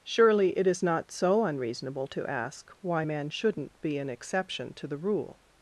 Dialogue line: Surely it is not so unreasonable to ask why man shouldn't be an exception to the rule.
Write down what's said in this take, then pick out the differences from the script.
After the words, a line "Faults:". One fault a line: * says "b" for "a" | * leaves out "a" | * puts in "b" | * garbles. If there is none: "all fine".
Surely it is not so unreasonable to ask why man shouldn't be an exception to the rule.
Faults:
all fine